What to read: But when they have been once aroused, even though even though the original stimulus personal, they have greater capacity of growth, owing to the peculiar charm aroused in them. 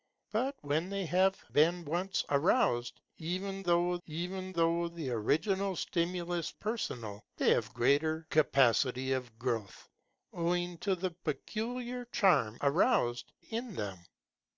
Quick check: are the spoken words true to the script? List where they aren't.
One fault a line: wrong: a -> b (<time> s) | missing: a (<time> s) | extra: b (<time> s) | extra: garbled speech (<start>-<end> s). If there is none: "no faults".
no faults